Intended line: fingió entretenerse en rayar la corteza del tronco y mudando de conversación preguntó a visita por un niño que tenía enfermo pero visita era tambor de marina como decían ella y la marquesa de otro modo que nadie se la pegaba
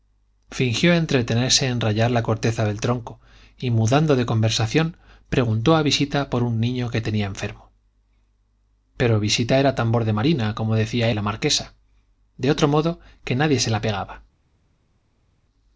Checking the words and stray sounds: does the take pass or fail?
fail